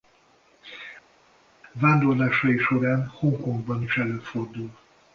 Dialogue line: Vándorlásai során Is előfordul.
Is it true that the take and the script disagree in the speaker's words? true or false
true